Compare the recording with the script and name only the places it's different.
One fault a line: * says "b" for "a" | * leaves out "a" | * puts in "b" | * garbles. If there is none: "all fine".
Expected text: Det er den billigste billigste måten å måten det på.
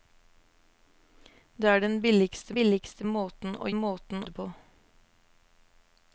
all fine